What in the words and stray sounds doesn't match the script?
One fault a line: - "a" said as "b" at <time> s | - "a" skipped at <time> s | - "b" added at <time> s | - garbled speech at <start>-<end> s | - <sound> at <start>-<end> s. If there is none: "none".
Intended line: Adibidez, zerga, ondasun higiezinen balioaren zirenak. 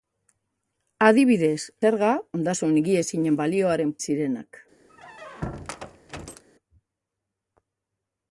- squeak at 4.9-6.4 s